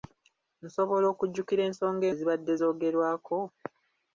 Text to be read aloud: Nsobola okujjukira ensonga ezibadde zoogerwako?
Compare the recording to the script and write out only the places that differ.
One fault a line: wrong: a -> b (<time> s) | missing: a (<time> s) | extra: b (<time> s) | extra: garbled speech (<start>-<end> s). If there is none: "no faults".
no faults